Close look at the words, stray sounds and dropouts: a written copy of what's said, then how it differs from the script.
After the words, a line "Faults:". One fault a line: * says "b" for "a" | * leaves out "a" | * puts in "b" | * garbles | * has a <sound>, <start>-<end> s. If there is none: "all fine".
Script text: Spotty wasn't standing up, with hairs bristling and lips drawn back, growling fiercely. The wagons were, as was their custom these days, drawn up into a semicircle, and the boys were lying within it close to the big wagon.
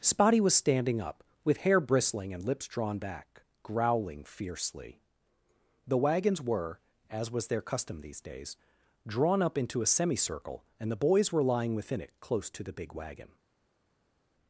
Spotty was standing up, with hair bristling and lips drawn back, growling fiercely. The wagons were, as was their custom these days, drawn up into a semicircle, and the boys were lying within it close to the big wagon.
Faults:
* says "was" for "wasn't"
* says "hair" for "hairs"